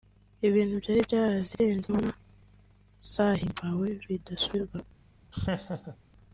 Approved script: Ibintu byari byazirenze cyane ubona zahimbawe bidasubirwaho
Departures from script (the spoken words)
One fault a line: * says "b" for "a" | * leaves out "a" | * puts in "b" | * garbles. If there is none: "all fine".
* leaves out "cyane"